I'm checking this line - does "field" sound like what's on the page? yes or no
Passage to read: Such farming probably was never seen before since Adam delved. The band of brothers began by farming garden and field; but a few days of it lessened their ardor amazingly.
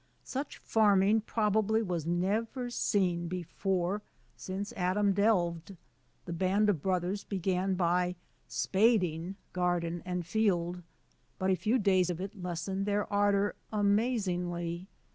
yes